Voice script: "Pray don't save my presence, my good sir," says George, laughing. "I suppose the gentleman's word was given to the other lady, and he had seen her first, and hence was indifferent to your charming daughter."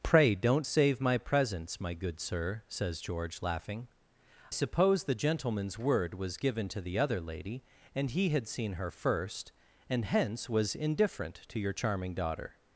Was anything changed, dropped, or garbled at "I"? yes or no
yes